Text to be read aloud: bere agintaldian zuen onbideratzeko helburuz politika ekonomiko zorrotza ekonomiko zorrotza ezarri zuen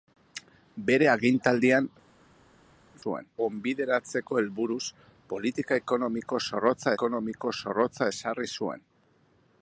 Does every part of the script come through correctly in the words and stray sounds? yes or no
yes